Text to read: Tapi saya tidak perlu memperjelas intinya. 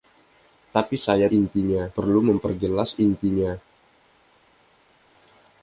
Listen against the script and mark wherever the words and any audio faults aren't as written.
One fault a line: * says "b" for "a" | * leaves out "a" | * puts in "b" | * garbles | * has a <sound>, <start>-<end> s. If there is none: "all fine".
* says "intinya" for "tidak"